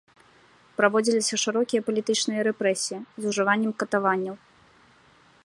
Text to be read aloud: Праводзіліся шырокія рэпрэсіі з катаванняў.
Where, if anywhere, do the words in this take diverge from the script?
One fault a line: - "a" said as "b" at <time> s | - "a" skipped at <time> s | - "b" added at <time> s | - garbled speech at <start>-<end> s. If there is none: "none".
- "палітычныя" added at 1.9 s
- "ужываннем" added at 3.3 s